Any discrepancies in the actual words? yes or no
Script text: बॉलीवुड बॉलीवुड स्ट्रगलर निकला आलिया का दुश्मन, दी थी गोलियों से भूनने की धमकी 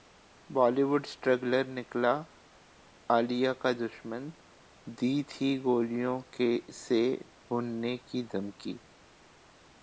yes